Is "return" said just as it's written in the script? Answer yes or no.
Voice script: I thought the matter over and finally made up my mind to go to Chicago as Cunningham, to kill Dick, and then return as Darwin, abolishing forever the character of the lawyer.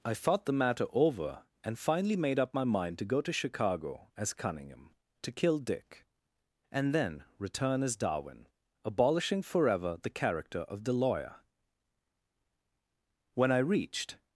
yes